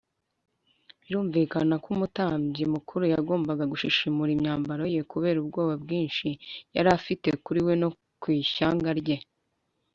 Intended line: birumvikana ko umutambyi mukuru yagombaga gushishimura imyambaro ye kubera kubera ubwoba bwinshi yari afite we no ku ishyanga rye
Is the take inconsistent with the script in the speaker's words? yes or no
yes